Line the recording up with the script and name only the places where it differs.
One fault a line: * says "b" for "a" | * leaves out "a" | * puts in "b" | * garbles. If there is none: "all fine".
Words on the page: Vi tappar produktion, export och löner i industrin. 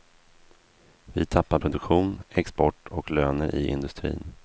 all fine